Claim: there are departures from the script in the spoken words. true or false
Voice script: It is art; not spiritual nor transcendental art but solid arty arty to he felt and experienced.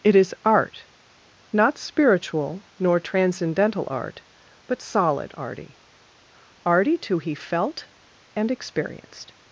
false